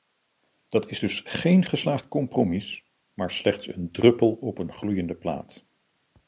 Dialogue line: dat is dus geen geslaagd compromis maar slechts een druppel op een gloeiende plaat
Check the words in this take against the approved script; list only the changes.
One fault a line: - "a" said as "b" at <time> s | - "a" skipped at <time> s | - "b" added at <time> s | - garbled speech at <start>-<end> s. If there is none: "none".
none